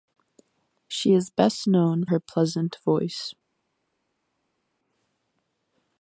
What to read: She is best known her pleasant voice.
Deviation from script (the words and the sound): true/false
false